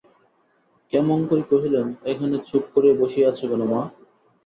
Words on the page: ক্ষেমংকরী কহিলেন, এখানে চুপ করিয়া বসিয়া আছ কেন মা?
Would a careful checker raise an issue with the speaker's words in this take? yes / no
no